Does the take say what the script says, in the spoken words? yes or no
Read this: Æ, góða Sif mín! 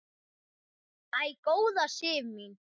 yes